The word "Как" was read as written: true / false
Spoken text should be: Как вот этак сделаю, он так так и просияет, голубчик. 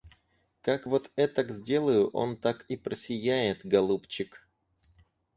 true